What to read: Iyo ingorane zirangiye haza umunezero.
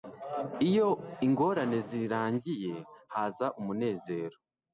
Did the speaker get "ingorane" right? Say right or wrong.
right